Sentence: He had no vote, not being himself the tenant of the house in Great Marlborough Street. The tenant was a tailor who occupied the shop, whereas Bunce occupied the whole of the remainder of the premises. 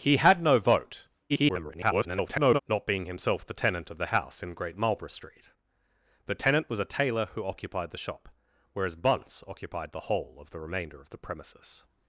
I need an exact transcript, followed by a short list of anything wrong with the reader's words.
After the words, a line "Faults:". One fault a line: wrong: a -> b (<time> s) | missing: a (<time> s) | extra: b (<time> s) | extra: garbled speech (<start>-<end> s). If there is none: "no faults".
He had no vote, [garbled] not being himself the tenant of the house in Great Marlborough Street. The tenant was a tailor who occupied the shop, whereas Bunce occupied the whole of the remainder of the premises.
Faults:
extra: garbled speech (1.3-2.6 s)